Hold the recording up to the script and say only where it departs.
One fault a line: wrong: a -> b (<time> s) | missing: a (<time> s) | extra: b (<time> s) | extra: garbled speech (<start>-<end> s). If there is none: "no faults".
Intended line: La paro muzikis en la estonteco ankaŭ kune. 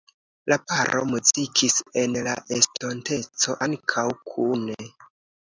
no faults